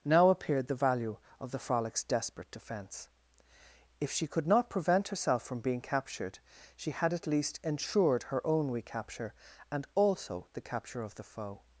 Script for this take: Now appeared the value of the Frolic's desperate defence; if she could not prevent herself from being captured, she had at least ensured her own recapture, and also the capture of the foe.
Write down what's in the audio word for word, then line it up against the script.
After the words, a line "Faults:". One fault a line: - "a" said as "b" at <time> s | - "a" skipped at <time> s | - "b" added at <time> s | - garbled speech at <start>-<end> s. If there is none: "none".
Now appeared the value of the Frolic's desperate defence; if she could not prevent herself from being captured, she had at least ensured her own recapture, and also the capture of the foe.
Faults:
none